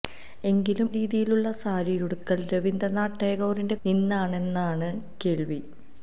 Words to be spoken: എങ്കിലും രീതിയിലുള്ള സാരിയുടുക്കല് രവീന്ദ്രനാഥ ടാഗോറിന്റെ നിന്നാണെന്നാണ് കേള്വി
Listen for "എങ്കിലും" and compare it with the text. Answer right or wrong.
right